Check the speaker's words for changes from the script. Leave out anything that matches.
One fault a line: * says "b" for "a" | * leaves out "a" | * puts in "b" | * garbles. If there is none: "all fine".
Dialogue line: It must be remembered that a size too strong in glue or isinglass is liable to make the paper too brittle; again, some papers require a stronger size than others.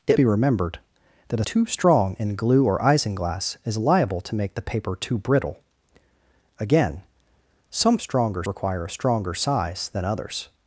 * leaves out "must"
* leaves out "size"
* says "stronger" for "papers"